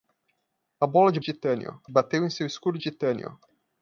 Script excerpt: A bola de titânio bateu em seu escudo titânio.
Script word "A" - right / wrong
right